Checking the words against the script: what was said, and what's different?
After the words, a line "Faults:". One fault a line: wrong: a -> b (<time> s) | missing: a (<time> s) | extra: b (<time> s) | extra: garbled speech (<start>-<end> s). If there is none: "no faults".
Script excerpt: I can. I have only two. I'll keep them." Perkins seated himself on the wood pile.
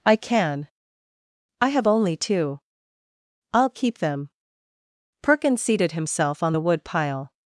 I can. I have only two. I'll keep them." Perkins seated himself on the wood pile.
Faults:
no faults